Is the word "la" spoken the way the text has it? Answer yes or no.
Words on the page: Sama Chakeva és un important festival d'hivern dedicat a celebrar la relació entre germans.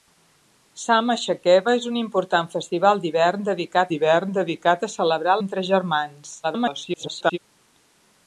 no